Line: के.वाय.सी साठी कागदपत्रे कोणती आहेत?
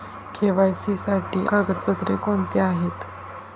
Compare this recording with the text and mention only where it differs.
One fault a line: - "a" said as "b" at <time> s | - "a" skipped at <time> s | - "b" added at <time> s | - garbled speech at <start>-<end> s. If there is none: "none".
none